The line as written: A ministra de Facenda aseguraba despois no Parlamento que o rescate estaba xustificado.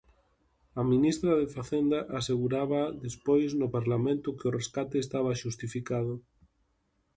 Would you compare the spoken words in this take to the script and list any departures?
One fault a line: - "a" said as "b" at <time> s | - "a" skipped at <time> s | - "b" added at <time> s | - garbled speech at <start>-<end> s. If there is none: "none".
none